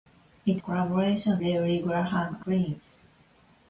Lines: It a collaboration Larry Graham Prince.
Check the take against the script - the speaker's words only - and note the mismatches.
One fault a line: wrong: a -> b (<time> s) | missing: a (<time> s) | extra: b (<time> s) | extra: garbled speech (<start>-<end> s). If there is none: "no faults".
no faults